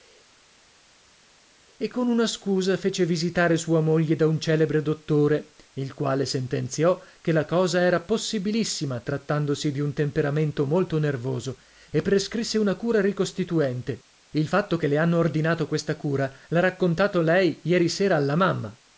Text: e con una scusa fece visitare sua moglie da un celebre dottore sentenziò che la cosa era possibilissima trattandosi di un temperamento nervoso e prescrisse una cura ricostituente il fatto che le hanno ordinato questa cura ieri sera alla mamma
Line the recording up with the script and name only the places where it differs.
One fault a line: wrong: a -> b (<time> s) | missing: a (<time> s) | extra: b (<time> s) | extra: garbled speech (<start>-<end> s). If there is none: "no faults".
extra: il quale (5.7 s)
extra: molto (10.6 s)
extra: l'ha raccontato lei (16.5 s)